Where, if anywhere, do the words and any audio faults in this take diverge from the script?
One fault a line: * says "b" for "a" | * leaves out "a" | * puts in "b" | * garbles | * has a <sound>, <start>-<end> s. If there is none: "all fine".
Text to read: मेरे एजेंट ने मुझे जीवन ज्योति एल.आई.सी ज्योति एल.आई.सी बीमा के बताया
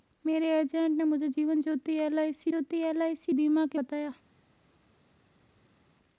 all fine